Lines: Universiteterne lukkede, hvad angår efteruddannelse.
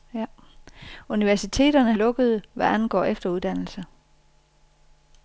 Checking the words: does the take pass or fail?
pass